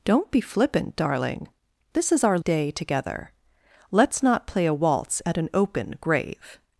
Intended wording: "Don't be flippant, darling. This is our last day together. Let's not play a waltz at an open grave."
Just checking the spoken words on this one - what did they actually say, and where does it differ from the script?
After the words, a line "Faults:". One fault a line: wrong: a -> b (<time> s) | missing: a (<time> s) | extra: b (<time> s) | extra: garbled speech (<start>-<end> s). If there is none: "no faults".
"Don't be flippant, darling. This is our day together. Let's not play a waltz at an open grave."
Faults:
missing: last (2.4 s)